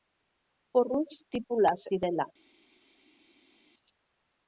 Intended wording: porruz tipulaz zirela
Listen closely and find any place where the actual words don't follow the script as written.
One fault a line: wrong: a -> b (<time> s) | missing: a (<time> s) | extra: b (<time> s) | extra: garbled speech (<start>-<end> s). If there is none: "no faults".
no faults